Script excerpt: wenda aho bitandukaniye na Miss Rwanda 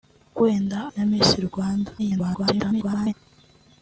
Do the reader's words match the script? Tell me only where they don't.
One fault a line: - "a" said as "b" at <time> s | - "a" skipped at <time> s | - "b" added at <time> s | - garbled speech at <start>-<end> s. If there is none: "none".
- "aho bitandukaniye" skipped at 0.8 s
- garbled speech at 2.0-3.1 s